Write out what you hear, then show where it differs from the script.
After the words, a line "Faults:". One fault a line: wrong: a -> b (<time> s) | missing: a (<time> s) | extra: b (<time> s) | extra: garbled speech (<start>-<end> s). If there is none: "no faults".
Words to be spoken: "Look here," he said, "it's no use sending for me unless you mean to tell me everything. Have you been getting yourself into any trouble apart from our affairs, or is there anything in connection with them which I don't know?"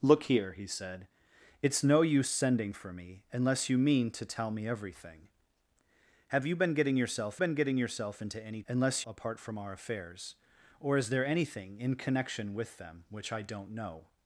"Look here," he said, "it's no use sending for me unless you mean to tell me everything. Have you been getting yourself been getting yourself into any unless apart from our affairs, or is there anything in connection with them which I don't know?"
Faults:
extra: been getting yourself (7.4 s)
wrong: trouble -> unless (8.7 s)